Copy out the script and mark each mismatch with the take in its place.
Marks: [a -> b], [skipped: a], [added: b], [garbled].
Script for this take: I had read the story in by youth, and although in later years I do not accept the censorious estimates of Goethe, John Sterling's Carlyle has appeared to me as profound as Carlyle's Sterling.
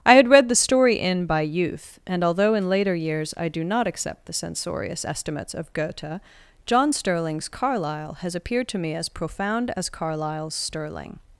I had read the story in by youth, and although in later years I do not accept the censorious estimates of Goethe, John Sterling's Carlyle has appeared to me as profound as Carlyle's Sterling.